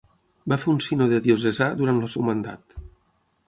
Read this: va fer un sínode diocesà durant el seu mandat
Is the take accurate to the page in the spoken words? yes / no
yes